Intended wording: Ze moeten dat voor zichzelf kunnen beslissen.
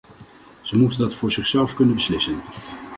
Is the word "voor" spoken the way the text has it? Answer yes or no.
yes